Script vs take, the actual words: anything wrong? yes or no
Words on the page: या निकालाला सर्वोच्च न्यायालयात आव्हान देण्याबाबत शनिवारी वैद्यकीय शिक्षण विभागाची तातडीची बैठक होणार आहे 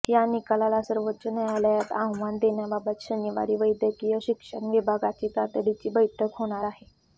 no